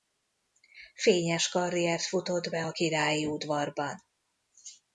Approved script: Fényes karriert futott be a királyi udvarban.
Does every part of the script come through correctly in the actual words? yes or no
yes